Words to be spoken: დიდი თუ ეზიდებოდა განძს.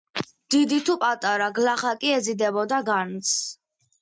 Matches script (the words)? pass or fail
fail